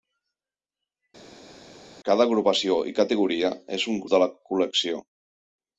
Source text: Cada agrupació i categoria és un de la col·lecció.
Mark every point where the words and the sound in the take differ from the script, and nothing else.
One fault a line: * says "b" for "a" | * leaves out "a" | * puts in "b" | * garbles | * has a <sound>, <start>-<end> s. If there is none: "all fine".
all fine